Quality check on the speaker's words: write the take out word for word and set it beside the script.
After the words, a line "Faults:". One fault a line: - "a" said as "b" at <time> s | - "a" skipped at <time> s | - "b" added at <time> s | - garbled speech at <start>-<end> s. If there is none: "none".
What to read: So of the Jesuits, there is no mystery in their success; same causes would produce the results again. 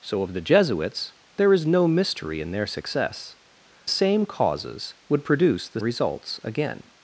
So of the Jesuits, there is no mystery in their success; same causes would produce the results again.
Faults:
none